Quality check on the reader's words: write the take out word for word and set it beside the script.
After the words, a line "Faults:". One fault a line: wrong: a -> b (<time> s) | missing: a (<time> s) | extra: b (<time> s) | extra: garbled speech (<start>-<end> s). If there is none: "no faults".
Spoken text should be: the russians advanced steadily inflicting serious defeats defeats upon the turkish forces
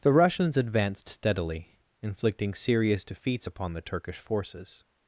the russians advanced steadily inflicting serious defeats upon the turkish forces
Faults:
missing: defeats (3.5 s)